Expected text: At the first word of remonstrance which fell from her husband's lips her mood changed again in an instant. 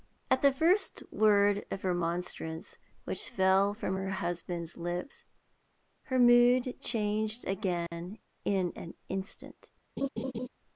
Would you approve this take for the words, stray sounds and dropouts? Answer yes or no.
no